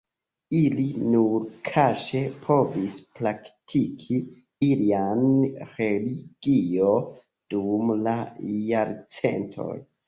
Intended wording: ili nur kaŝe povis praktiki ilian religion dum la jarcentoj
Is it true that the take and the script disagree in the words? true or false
false